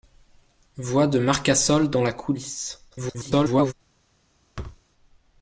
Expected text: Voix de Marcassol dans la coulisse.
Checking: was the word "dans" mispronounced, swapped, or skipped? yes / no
no